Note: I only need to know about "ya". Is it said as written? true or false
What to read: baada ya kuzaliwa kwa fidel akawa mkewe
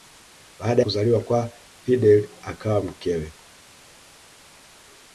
false